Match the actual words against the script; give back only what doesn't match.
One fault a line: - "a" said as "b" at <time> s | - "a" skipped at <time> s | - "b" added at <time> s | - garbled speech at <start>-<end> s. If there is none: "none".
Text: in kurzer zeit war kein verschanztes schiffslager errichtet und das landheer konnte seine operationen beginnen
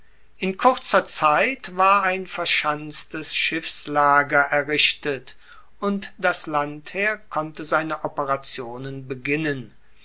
- "kein" said as "ein" at 2.0 s